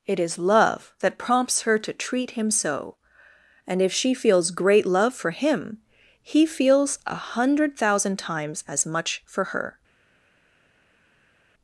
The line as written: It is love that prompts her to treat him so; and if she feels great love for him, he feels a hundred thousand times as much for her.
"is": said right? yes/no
yes